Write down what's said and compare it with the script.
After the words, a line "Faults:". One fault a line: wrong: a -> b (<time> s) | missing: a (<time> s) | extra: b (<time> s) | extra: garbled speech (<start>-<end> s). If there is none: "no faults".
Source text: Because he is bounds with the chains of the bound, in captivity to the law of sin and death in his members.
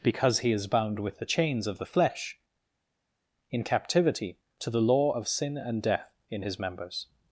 Because he is bound with the chains of the flesh, in captivity to the law of sin and death in his members.
Faults:
wrong: bounds -> bound (0.7 s)
wrong: bound -> flesh (1.9 s)